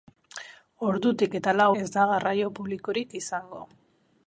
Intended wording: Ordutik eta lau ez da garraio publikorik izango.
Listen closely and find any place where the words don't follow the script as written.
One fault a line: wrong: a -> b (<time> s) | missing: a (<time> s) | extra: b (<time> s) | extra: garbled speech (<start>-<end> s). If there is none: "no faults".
no faults